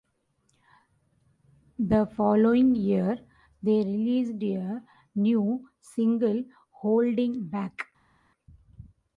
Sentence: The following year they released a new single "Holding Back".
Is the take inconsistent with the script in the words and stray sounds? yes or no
no